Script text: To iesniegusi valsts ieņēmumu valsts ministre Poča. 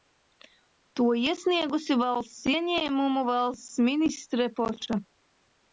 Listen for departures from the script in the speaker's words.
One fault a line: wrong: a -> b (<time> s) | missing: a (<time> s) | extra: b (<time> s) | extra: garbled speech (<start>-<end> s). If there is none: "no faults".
no faults